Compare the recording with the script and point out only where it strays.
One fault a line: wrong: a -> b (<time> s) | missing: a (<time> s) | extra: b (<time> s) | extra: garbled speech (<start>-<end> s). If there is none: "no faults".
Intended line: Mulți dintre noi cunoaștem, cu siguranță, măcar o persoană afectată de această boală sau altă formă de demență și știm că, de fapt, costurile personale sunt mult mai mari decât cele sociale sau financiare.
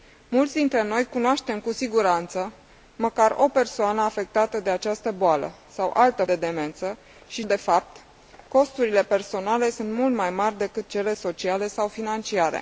missing: formă (6.2 s)
missing: știm că (7.4 s)